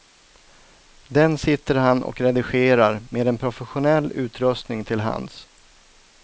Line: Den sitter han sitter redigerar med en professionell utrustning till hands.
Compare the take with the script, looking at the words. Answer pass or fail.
fail